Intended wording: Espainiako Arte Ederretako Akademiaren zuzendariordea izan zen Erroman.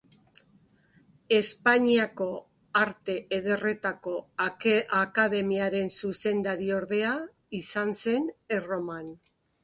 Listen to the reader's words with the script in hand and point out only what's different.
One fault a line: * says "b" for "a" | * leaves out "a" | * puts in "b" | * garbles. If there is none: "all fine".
all fine